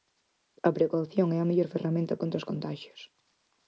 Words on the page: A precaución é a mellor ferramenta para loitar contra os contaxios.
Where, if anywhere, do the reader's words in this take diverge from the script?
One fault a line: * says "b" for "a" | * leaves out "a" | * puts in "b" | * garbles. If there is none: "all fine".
* leaves out "para loitar"